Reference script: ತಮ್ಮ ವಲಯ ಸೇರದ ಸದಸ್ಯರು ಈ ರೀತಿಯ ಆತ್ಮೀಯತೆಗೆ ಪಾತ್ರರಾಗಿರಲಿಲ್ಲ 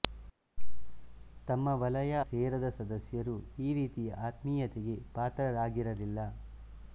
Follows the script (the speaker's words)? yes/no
yes